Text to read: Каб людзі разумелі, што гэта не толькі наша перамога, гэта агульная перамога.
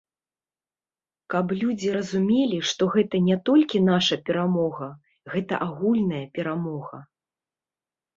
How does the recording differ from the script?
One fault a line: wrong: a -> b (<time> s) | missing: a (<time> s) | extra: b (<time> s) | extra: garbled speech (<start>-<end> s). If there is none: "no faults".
no faults